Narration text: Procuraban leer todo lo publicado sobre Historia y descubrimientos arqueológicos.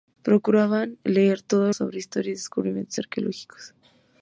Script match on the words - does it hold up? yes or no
no